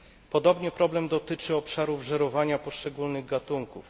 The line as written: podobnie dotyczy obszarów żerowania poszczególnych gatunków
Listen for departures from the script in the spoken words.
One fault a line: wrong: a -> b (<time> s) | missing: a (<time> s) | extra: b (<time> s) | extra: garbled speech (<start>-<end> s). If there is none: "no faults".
extra: problem (0.7 s)